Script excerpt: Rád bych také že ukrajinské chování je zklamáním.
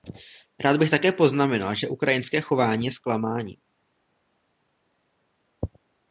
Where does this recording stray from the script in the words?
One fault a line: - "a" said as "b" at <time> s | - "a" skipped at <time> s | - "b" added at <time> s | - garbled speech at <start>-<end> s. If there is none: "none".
- "poznamenal" added at 1.1 s